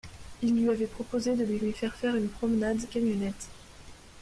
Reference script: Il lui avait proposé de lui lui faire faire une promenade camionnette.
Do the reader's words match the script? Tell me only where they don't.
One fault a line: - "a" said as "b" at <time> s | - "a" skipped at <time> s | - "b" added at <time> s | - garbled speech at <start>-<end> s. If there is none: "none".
none